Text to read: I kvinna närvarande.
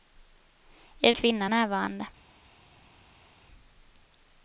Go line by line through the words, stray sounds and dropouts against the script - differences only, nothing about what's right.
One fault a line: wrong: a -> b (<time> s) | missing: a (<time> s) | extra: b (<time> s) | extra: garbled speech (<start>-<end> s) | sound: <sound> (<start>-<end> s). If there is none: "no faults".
no faults